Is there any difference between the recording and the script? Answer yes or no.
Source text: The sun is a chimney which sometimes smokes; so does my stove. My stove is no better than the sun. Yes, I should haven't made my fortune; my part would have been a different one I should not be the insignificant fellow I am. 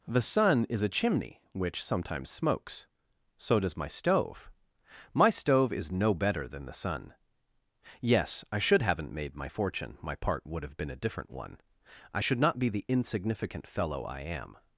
no